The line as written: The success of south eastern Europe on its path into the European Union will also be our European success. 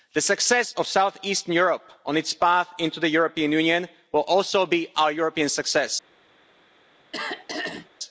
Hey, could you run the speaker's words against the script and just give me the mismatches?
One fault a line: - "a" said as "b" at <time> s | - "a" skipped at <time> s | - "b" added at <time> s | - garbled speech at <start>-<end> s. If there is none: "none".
none